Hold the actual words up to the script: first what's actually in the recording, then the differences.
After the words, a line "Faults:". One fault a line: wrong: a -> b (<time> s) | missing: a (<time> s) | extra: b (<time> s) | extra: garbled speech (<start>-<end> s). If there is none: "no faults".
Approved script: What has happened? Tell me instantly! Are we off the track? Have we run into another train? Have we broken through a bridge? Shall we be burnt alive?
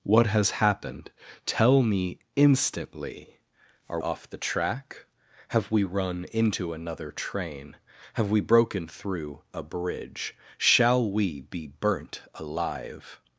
What has happened? Tell me instantly! Are off the track? Have we run into another train? Have we broken through a bridge? Shall we be burnt alive?
Faults:
missing: we (4.0 s)